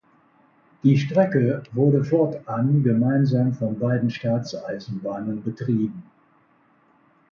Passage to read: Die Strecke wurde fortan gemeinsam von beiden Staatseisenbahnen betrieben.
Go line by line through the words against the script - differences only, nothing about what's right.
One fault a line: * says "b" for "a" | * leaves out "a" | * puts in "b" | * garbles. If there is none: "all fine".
all fine